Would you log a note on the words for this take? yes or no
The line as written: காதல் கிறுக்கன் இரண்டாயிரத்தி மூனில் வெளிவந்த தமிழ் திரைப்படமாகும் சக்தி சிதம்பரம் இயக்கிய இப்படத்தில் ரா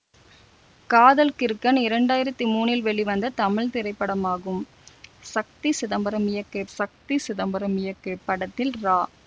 yes